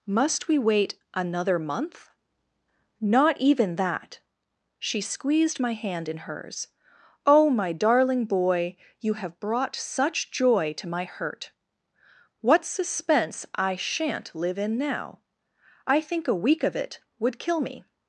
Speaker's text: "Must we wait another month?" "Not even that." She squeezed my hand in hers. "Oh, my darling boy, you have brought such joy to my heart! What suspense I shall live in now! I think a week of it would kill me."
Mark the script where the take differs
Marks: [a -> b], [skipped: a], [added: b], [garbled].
"Must we wait another month?" "Not even that." She squeezed my hand in hers. "Oh, my darling boy, you have brought such joy to my [heart! -> hurt] What suspense I [shall -> shan't] live in now! I think a week of it would kill me."